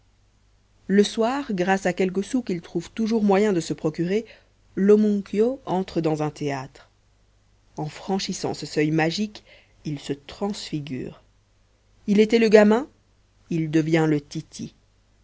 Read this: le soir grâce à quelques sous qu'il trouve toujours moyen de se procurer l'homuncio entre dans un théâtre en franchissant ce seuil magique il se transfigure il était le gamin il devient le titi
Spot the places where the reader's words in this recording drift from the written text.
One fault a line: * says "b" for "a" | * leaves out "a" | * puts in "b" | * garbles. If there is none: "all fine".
all fine